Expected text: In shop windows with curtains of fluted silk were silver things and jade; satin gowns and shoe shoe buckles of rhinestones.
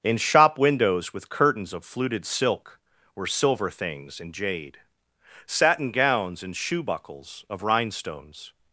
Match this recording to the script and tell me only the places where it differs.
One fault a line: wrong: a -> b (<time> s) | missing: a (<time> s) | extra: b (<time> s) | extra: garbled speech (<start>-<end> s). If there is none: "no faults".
missing: shoe (6.8 s)